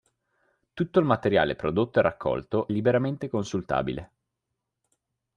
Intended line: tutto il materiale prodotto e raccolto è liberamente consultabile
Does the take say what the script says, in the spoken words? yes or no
no